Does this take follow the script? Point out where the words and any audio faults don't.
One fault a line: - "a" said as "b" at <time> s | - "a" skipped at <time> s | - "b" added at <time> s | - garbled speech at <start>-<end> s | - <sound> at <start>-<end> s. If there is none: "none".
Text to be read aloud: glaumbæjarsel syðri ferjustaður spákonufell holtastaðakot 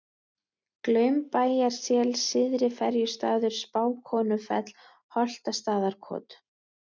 none